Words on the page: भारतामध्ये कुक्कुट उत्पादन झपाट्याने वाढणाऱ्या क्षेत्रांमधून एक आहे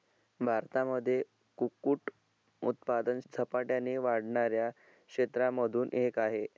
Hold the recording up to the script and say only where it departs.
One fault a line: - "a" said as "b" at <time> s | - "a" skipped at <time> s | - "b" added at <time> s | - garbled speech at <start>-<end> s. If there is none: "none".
none